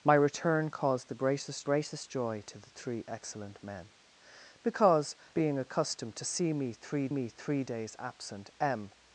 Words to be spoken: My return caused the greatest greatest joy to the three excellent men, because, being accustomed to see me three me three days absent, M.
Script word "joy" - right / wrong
right